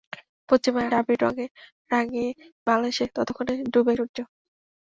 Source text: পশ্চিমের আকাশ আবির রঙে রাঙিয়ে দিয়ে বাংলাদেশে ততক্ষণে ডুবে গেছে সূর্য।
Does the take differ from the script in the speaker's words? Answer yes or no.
yes